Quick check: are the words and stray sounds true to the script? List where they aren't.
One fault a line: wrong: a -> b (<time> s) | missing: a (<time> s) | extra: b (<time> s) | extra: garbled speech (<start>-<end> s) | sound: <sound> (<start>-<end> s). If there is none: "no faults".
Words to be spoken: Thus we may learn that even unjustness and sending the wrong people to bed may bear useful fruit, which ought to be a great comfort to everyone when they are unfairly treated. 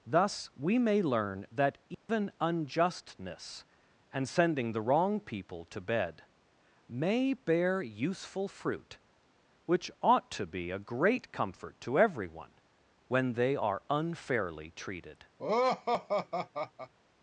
sound: dropout (1.9-2.1 s)
sound: laugh (15.4-16.9 s)